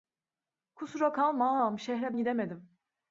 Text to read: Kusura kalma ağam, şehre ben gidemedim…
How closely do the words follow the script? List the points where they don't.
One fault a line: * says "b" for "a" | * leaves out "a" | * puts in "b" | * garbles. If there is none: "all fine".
* leaves out "ben"